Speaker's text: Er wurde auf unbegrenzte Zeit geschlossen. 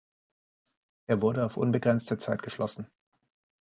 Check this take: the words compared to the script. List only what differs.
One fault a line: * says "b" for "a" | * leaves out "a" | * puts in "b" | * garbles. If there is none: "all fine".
all fine